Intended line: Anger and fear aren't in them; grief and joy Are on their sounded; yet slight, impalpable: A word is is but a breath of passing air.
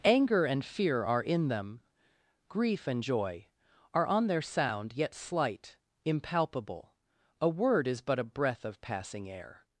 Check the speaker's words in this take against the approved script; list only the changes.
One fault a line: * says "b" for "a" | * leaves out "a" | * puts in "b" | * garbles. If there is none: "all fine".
* says "are" for "aren't"
* says "sound" for "sounded"
* leaves out "is"